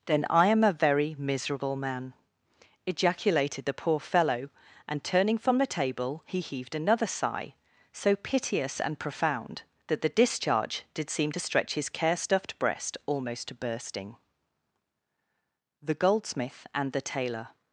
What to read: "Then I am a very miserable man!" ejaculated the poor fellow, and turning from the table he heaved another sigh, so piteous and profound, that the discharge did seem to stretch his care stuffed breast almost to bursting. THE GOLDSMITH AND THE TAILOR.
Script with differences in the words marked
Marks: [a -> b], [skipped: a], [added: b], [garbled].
"Then I am a very miserable man!" ejaculated the poor fellow, and turning from the table he heaved another sigh, so piteous and profound, that the discharge did seem to stretch his care stuffed breast almost to bursting. THE GOLDSMITH AND THE TAILOR.